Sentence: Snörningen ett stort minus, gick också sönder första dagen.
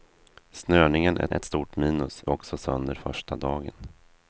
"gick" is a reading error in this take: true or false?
true